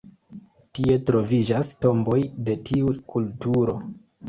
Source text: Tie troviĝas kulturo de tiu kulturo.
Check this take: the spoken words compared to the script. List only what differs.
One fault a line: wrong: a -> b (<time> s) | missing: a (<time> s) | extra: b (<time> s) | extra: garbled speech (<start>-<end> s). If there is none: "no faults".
wrong: kulturo -> tomboj (1.9 s)